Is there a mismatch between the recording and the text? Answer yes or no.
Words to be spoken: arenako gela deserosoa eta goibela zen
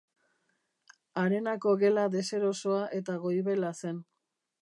no